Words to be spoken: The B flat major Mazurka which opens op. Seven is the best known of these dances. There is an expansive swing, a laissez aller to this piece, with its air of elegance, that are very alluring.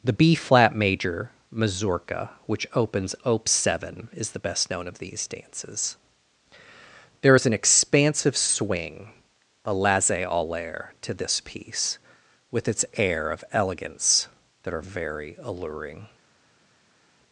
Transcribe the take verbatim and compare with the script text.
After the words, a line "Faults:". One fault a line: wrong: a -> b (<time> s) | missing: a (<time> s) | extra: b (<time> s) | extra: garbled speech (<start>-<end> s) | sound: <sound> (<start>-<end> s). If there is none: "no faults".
The B flat major Mazurka which opens op. Seven is the best known of these dances. There is an expansive swing, a laissez aller to this piece, with its air of elegance, that are very alluring.
Faults:
no faults